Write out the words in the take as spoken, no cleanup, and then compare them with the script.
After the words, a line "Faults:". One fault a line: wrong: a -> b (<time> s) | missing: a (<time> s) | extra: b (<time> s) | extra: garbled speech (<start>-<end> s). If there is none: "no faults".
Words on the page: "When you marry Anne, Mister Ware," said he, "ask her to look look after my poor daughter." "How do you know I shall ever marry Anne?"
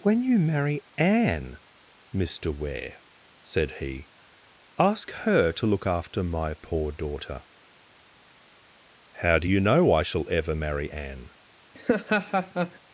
"When you marry Anne, Mister Ware," said he, "ask her to look after my poor daughter." "How do you know I shall ever marry Anne?"
Faults:
missing: look (5.8 s)